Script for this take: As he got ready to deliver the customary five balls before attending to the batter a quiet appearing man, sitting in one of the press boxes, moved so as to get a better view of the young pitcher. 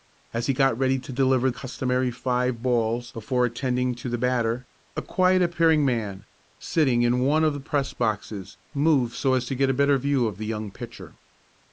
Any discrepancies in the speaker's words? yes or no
yes